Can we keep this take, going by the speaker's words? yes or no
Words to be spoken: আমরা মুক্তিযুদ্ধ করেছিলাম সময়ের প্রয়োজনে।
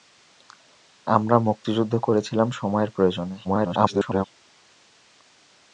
no